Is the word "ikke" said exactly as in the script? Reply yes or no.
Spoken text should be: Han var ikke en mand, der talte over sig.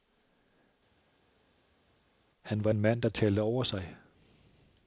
no